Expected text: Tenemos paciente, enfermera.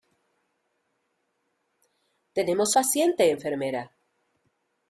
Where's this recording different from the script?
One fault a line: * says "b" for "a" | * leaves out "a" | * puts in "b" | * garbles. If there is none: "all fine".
all fine